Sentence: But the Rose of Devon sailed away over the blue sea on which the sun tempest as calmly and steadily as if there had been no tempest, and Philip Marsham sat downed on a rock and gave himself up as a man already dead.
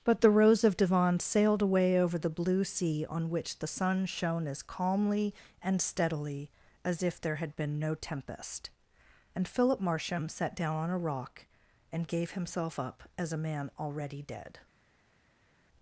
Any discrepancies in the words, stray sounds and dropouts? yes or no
yes